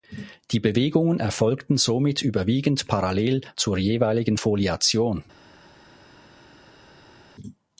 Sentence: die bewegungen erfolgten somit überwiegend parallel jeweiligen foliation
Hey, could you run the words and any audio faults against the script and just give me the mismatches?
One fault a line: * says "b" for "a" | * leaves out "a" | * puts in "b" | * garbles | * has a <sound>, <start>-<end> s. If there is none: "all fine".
* puts in "zur"